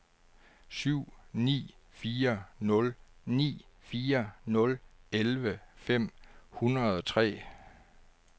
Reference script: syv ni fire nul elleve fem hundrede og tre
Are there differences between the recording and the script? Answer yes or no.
yes